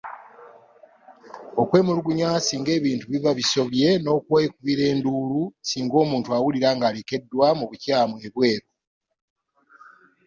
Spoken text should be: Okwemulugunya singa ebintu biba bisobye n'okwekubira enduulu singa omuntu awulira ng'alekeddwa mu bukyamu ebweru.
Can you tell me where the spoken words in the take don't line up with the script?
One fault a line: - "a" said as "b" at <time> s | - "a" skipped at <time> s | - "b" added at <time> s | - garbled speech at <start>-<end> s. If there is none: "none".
none